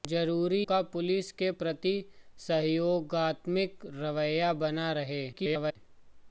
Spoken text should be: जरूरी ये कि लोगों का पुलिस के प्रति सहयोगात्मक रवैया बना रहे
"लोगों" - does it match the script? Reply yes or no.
no